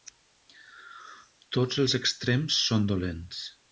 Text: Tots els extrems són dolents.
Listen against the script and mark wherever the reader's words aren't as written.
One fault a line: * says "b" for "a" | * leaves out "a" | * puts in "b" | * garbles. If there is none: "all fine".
all fine